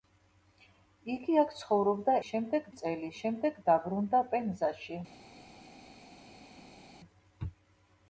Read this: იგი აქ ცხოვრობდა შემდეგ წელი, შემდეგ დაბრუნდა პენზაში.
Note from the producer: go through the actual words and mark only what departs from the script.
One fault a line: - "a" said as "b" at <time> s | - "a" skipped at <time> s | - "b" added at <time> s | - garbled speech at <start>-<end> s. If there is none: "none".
none